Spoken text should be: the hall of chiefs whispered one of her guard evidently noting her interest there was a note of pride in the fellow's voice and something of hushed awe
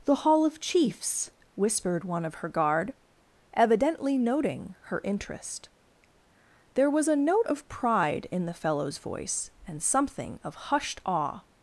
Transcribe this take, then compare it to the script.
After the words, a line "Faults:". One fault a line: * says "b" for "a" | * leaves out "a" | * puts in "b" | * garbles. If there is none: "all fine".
the hall of chiefs whispered one of her guard evidently noting her interest there was a note of pride in the fellow's voice and something of hushed awe
Faults:
all fine